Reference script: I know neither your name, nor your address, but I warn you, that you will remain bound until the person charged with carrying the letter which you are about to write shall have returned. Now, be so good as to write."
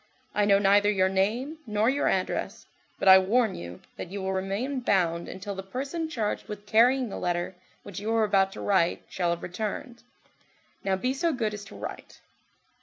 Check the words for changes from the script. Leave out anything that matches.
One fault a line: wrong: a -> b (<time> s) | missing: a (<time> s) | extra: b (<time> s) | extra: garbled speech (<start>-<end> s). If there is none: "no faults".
no faults